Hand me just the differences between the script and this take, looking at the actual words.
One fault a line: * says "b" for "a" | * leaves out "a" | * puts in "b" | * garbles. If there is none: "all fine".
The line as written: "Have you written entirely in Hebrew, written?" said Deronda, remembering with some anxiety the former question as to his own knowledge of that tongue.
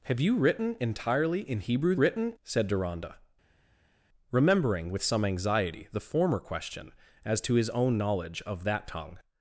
all fine